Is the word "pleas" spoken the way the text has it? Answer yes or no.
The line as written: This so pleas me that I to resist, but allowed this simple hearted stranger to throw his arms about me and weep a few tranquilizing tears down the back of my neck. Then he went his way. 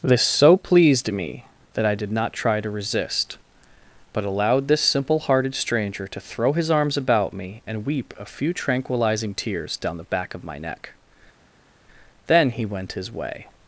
no